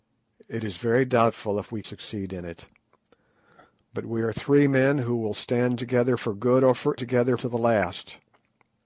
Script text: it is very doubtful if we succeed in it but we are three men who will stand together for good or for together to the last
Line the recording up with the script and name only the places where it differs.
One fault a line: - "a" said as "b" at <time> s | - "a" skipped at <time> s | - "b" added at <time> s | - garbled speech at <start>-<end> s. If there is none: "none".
none